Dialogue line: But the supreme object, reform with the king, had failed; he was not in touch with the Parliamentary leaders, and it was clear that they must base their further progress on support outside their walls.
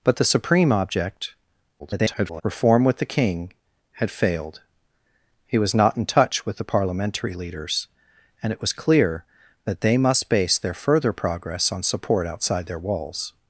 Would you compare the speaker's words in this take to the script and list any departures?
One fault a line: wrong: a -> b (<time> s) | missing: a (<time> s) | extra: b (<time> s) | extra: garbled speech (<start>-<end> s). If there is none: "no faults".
extra: garbled speech (1.8-2.4 s)